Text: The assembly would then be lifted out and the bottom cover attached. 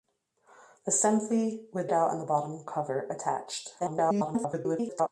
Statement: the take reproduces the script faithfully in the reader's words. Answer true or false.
false